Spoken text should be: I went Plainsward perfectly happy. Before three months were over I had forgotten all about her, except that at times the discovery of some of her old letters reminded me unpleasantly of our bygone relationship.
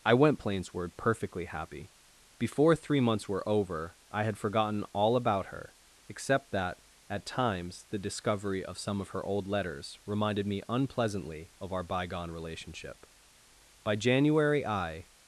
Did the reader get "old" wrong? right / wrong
right